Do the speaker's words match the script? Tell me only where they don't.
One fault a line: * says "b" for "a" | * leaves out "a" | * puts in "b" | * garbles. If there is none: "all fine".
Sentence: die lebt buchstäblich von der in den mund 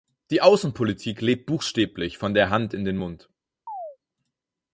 * puts in "außenpolitik"
* puts in "hand"